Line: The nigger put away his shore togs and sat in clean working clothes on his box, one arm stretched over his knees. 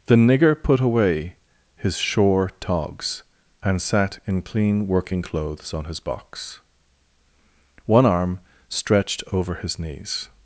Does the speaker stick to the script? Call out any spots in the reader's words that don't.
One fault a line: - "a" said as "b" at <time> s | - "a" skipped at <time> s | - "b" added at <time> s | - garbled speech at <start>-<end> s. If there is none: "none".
none